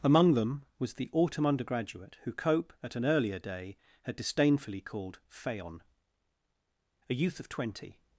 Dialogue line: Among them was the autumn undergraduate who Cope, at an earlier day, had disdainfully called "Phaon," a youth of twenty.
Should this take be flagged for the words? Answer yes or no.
no